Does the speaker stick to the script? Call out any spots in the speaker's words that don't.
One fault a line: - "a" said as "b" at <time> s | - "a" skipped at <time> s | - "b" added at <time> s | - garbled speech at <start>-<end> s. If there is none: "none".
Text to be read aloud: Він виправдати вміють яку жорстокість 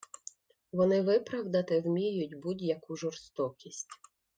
- "Він" said as "Вони" at 0.7 s
- "будь" added at 2.4 s